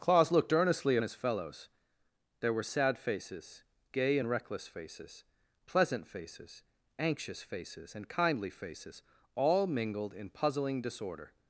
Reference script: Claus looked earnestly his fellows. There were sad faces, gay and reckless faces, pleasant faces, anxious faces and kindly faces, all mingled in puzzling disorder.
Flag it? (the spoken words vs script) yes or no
no